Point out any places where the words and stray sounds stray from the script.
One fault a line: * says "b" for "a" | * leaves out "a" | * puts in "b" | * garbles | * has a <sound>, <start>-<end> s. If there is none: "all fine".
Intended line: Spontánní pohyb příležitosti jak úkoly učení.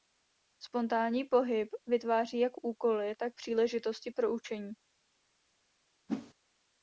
* says "vytváří" for "příležitosti"
* puts in "tak příležitosti pro"
* has a whoosh, 6.1-6.3 s